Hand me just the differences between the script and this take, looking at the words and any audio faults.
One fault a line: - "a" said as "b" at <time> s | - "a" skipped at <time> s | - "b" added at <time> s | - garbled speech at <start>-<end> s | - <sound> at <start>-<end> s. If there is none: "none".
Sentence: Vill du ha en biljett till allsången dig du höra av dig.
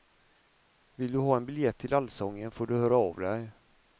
- "dig" said as "får" at 2.5 s